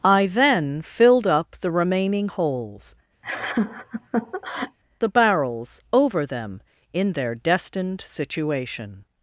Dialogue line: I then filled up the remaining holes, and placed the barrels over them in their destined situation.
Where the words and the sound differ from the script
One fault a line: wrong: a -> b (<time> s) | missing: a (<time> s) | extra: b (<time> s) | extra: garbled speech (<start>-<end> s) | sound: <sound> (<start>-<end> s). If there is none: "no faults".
missing: and placed (2.9 s)
sound: laugh (3.2-4.8 s)